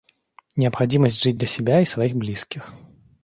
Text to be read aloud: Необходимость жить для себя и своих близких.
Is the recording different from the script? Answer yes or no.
no